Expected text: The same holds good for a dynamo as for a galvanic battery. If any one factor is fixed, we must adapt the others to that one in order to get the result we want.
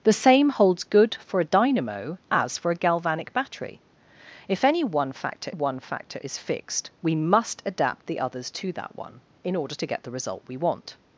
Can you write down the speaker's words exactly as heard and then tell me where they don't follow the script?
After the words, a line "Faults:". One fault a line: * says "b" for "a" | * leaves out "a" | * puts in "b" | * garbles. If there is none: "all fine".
The same holds good for a dynamo as for a galvanic battery. If any one factor one factor is fixed, we must adapt the others to that one in order to get the result we want.
Faults:
* puts in "one factor"